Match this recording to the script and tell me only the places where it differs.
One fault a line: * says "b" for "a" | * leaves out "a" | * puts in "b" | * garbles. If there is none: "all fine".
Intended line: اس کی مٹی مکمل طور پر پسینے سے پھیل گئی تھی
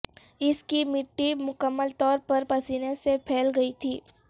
all fine